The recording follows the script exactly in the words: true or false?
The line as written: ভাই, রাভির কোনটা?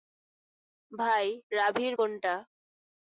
true